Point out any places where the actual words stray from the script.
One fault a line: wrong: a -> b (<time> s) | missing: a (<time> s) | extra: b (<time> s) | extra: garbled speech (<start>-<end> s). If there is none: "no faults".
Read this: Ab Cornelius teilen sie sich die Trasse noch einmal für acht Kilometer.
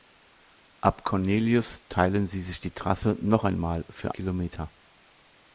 missing: acht (4.2 s)